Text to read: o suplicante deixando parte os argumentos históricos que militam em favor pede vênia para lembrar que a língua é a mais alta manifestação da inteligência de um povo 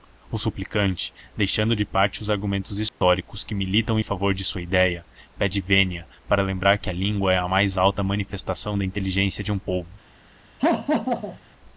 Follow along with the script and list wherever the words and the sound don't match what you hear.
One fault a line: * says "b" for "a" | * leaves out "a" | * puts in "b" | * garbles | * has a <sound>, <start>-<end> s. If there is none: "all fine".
* puts in "de"
* has a dropout, 2.9-3.0 s
* puts in "de sua idéia"
* has a laugh, 10.6-11.4 s